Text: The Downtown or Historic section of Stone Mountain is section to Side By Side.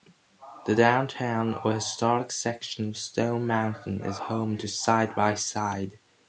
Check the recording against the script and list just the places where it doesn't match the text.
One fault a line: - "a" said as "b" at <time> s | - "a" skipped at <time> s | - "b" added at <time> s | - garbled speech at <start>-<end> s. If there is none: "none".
- "section" said as "home" at 4.2 s